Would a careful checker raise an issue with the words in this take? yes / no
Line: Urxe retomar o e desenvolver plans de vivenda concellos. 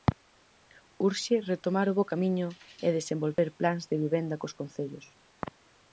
yes